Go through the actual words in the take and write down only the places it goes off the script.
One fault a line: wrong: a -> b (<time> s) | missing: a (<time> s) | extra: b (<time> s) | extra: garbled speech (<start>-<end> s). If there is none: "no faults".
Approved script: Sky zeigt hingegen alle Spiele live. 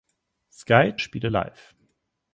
missing: zeigt hingegen alle (0.9 s)